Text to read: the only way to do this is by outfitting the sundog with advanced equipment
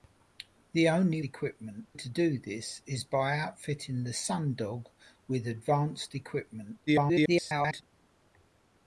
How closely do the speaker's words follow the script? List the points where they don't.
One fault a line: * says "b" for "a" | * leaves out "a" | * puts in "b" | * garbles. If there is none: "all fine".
* says "equipment" for "way"
* garbles